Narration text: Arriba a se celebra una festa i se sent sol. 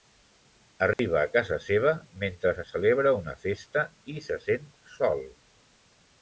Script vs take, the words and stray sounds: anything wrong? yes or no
yes